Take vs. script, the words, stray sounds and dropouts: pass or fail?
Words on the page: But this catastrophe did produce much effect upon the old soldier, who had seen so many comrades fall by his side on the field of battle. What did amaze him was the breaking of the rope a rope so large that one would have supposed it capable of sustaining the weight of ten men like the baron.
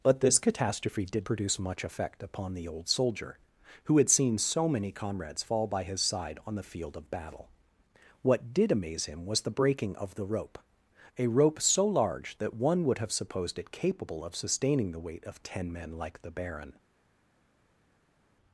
pass